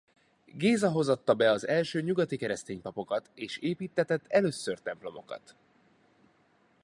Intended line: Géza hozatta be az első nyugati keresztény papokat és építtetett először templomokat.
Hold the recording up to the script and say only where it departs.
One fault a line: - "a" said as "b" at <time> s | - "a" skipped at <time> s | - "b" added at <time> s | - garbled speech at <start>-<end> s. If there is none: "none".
none